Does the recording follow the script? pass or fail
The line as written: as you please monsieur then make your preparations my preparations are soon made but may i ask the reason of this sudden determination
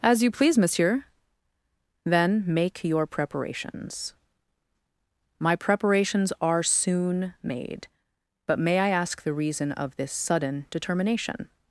pass